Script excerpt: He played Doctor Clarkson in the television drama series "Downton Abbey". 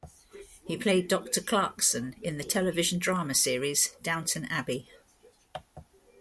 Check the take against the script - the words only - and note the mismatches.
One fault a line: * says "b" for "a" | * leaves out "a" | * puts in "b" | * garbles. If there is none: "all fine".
all fine